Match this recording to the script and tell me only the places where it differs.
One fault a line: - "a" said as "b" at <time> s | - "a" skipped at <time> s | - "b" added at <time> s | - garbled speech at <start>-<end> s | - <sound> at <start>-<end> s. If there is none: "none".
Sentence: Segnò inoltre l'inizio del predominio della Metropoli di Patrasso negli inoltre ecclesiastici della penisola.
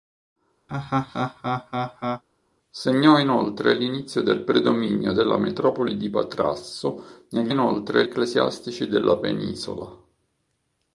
- laugh at 0.7-2.2 s